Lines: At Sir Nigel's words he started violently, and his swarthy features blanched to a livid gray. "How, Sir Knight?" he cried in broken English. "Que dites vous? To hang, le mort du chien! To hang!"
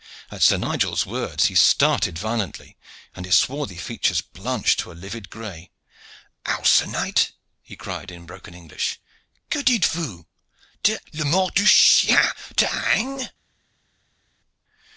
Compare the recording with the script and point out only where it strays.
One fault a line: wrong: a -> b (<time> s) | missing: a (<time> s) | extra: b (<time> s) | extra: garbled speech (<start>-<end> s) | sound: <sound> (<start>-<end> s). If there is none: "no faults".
missing: hang (11.0 s)